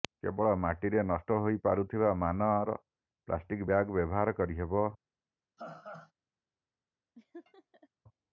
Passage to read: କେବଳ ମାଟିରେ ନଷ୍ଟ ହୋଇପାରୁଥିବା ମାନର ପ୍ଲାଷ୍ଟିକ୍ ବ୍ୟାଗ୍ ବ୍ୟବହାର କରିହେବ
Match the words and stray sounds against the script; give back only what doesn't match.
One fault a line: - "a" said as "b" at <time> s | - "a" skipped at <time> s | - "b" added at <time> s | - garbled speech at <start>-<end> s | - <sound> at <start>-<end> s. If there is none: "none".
- laugh at 5.6-6.1 s
- laugh at 7.2-7.9 s